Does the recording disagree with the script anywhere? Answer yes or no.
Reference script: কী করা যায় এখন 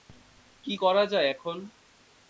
no